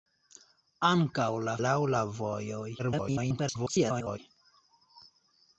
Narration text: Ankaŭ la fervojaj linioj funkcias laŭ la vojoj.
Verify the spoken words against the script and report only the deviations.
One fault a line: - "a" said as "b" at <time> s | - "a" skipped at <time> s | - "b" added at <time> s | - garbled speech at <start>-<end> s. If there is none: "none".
- "fervojaj linioj funkcias" skipped at 1.5 s
- garbled speech at 2.8-4.2 s